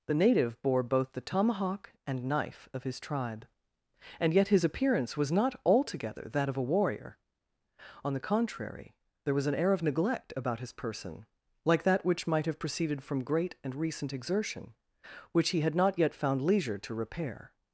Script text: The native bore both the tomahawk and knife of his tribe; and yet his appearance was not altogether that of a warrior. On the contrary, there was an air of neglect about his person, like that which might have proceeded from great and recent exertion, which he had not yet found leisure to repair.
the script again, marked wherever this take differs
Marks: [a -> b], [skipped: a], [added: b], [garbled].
The native bore both the tomahawk and knife of his tribe; and yet his appearance was not altogether that of a warrior. On the contrary, there was an air of neglect about his person, like that which might have proceeded from great and recent exertion, which he had not yet found leisure to repair.